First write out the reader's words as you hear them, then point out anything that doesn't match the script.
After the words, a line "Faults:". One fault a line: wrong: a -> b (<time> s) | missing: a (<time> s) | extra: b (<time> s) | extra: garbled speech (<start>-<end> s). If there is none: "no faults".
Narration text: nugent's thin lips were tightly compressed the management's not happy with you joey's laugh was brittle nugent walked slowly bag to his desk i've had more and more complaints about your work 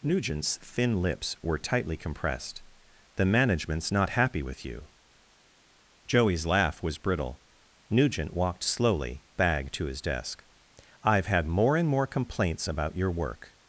nugent's thin lips were tightly compressed the management's not happy with you joey's laugh was brittle nugent walked slowly bag to his desk i've had more and more complaints about your work
Faults:
no faults